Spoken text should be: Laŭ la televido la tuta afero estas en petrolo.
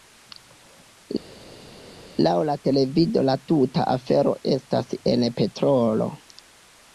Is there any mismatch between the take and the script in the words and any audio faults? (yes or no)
no